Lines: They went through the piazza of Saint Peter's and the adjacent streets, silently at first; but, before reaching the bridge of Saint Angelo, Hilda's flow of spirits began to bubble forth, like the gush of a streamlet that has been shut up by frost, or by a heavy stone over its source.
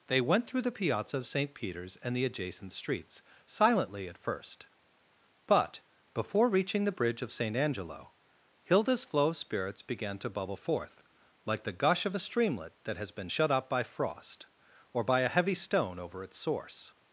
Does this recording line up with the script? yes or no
yes